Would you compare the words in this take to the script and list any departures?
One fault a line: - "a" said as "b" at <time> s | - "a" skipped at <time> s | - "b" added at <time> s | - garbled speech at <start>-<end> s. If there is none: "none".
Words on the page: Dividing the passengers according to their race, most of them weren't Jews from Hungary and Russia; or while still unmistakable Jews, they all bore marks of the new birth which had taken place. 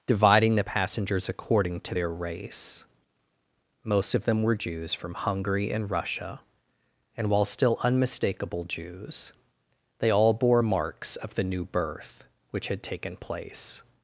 - "weren't" said as "were" at 4.4 s
- "or" said as "and" at 7.2 s